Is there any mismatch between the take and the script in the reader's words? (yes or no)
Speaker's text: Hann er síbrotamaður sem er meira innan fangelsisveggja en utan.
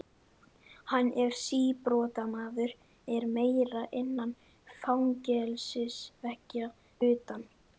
yes